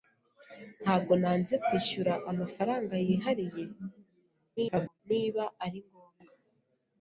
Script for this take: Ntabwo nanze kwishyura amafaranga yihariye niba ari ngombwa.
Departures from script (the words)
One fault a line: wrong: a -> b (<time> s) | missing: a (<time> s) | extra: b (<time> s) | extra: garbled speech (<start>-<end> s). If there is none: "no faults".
extra: garbled speech (4.6-5.0 s)